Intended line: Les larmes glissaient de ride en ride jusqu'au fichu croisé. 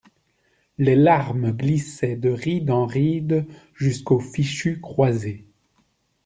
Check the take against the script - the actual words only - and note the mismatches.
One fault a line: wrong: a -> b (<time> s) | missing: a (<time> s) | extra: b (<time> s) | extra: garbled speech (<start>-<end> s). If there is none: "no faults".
no faults